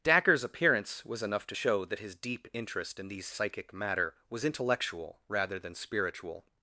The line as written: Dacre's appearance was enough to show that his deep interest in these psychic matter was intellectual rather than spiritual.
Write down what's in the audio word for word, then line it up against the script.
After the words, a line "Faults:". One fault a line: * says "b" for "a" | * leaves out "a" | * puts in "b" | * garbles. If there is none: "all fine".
Dacre's appearance was enough to show that his deep interest in these psychic matter was intellectual rather than spiritual.
Faults:
all fine